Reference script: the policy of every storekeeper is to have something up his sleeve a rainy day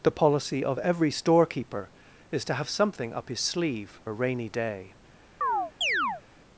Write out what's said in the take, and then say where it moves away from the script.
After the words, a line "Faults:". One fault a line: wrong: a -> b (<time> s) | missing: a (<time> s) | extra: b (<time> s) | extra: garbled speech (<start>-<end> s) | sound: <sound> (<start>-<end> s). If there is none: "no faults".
the policy of every storekeeper is to have something up his sleeve a rainy day
Faults:
sound: chirp (5.4-6.2 s)